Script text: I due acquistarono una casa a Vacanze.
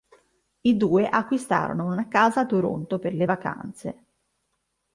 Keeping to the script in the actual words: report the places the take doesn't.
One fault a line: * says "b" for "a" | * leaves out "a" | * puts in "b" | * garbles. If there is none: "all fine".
* puts in "Toronto per le"